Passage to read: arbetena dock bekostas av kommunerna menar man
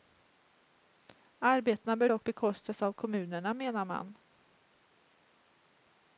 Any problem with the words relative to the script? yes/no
yes